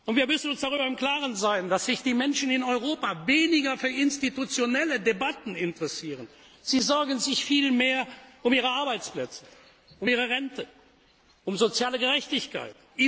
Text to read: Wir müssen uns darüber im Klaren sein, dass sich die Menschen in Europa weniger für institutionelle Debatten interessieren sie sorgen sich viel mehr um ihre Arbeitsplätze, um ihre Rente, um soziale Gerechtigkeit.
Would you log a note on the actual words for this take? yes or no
no